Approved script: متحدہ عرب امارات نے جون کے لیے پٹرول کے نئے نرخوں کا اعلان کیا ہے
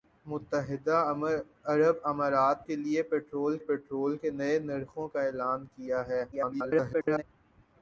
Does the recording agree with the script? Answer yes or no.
no